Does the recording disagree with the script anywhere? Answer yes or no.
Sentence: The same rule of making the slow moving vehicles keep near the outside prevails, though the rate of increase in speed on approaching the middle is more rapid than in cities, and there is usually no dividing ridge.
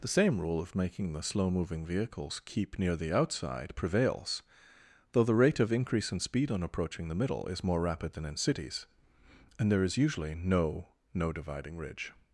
yes